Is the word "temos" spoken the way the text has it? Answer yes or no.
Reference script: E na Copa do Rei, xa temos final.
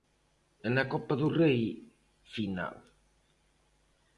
no